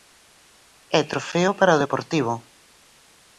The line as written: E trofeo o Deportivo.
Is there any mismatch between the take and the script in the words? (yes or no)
yes